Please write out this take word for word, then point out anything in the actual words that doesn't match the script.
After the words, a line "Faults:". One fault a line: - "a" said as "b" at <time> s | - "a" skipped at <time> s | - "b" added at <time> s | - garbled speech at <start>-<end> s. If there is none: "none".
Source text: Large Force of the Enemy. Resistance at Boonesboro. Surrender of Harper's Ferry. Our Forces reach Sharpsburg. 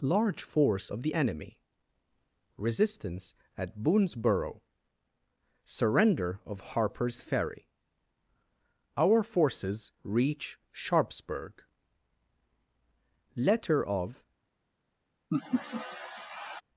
Large Force of the Enemy. Resistance at Boonesboro. Surrender of Harper's Ferry. Our Forces reach Sharpsburg. Letter of
Faults:
- "Letter of" added at 13.4 s